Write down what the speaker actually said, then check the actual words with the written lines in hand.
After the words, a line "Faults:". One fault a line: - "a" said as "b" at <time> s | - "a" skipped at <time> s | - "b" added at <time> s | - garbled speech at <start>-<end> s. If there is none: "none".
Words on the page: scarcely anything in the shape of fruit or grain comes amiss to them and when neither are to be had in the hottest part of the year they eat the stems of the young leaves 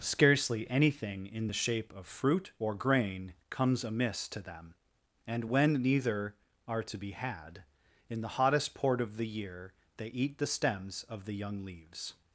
scarcely anything in the shape of fruit or grain comes amiss to them and when neither are to be had in the hottest port of the year they eat the stems of the young leaves
Faults:
- "part" said as "port" at 8.7 s